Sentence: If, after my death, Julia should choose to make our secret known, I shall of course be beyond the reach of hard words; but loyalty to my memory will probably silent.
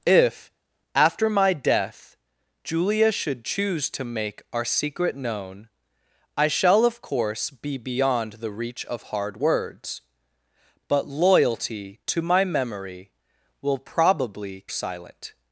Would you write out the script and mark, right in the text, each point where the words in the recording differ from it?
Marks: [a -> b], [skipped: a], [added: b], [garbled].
If, after my death, Julia should choose to make our secret known, I shall of course be beyond the reach of hard words; but loyalty to my memory will probably silent.